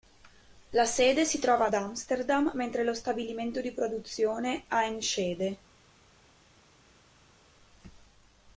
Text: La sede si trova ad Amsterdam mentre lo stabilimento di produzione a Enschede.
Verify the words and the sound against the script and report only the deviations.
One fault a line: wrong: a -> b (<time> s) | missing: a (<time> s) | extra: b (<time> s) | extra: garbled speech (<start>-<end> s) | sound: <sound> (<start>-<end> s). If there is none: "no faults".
no faults